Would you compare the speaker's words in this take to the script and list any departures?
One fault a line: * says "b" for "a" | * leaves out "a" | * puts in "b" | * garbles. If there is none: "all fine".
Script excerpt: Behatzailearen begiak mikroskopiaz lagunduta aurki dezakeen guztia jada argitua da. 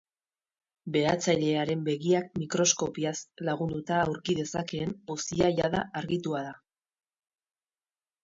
all fine